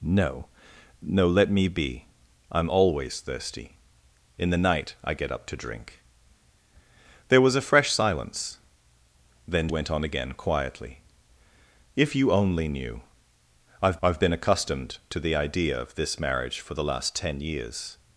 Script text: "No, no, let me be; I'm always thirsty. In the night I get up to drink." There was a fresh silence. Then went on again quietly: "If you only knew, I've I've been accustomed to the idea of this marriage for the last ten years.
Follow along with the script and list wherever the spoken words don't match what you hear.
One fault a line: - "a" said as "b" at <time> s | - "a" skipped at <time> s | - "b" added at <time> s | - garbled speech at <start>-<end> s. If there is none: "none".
none